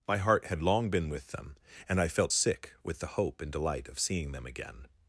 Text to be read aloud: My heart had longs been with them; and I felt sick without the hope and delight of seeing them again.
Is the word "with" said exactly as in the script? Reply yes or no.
yes